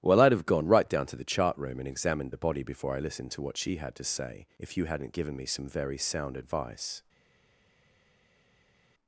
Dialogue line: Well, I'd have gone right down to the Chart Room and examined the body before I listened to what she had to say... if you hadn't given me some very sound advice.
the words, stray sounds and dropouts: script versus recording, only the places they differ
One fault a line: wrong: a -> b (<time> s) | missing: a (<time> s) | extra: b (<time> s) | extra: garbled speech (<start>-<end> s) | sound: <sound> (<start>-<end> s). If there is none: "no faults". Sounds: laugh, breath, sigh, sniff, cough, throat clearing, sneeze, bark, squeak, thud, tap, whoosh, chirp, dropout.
no faults